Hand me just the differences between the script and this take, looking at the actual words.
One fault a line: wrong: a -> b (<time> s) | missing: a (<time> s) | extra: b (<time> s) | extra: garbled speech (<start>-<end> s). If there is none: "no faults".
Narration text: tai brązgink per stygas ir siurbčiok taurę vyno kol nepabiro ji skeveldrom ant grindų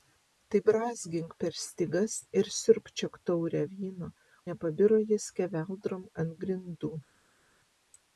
missing: kol (4.1 s)